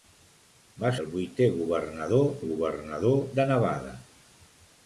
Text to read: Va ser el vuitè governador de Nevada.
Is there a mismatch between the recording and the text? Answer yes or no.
yes